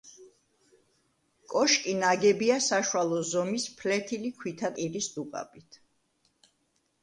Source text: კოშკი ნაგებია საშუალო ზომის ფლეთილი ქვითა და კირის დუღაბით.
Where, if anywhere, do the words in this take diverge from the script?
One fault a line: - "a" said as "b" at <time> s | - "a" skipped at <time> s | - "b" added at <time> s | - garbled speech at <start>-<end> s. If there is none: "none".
- "და" skipped at 4.8 s